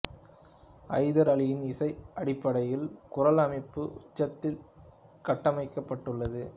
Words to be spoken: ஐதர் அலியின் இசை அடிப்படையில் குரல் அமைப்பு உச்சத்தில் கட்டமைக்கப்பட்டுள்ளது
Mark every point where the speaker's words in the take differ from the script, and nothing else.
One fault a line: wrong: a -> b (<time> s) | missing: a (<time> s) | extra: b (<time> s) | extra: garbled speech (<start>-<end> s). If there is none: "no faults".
no faults